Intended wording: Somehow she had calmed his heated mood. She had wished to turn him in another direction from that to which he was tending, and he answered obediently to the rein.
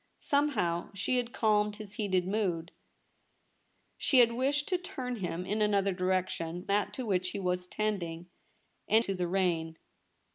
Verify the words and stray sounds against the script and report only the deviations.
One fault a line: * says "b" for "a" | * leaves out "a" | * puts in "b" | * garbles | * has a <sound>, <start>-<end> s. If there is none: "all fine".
* leaves out "from"
* leaves out "he answered obediently"